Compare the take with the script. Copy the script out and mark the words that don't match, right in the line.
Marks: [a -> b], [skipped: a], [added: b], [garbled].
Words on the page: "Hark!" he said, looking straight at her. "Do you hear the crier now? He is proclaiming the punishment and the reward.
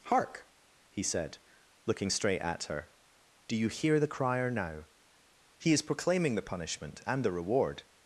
"Hark!" he said, looking straight at her. "Do you hear the crier now? He is proclaiming the punishment and the reward.